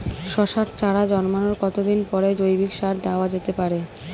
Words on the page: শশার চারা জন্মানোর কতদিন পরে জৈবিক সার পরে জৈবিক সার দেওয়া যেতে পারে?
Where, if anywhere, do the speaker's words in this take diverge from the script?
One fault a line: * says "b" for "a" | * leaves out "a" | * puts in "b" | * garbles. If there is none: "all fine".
* leaves out "পরে জৈবিক সার"